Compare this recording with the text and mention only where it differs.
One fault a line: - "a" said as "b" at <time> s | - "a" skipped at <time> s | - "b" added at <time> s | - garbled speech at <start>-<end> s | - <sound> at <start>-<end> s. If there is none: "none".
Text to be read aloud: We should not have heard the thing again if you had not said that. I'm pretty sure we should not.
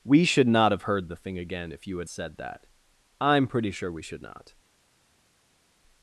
- "not" skipped at 2.1 s